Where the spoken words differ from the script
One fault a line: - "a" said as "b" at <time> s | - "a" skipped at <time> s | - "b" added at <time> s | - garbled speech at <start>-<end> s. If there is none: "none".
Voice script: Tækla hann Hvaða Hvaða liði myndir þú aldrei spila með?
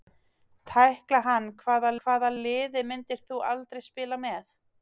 none